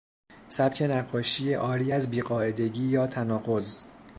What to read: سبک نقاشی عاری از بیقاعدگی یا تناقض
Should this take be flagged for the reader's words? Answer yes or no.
no